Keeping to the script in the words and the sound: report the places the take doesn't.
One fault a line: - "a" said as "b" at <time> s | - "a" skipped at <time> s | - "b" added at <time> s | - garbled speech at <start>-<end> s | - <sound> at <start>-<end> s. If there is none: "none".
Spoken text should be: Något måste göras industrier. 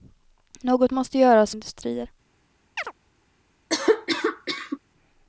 - chirp at 2.8-2.9 s
- cough at 3.7-4.8 s